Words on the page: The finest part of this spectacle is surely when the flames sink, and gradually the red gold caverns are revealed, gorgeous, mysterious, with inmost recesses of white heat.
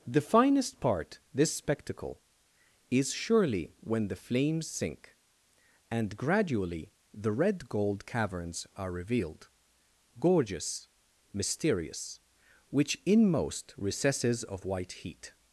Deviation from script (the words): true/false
true